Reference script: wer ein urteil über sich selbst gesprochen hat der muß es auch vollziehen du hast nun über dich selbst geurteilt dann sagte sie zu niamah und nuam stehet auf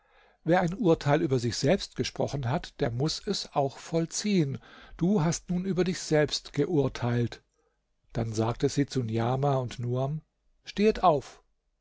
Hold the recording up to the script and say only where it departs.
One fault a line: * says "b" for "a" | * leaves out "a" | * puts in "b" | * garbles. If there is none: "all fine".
all fine